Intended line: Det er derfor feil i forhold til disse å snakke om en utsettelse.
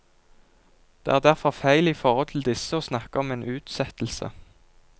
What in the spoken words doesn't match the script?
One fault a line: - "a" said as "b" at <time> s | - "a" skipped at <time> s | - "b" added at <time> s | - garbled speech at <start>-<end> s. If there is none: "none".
none